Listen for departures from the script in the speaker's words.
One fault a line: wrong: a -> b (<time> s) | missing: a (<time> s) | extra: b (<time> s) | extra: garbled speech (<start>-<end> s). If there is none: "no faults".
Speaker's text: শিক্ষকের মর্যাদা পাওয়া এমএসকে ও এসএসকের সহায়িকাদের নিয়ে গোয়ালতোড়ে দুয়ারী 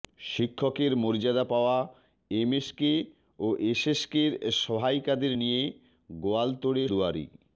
no faults